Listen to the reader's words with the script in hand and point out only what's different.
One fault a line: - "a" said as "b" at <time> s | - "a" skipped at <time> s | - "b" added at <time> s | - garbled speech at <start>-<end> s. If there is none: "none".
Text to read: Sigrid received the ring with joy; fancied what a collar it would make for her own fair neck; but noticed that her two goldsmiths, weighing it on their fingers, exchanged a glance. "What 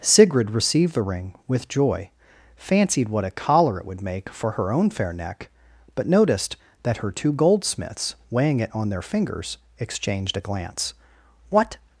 none